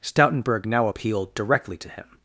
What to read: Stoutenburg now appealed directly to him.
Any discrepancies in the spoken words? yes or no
no